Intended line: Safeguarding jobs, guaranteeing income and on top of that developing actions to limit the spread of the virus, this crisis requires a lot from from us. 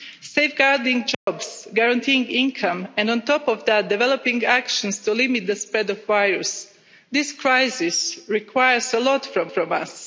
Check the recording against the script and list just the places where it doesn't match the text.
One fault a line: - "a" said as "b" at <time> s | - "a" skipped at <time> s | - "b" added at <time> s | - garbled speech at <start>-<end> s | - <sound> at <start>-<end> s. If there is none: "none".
- dropout at 1.1-1.3 s